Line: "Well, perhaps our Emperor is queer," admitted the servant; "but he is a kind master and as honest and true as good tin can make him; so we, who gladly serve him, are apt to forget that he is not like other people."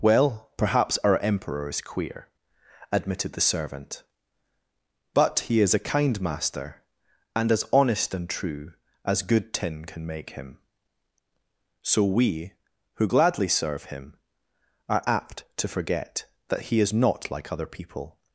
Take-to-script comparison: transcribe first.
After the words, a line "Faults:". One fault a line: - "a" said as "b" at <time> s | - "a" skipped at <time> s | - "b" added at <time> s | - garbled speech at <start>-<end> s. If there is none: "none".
"Well, perhaps our Emperor is queer," admitted the servant; "but he is a kind master and as honest and true as good tin can make him; so we, who gladly serve him, are apt to forget that he is not like other people."
Faults:
none